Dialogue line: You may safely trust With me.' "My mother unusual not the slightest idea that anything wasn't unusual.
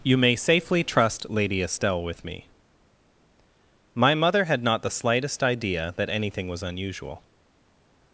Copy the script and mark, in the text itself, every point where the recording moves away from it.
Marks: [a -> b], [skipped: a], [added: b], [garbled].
You may safely trust [added: Lady Estelle] With me.' "My mother [unusual -> had] not the slightest idea that anything [wasn't -> was] unusual.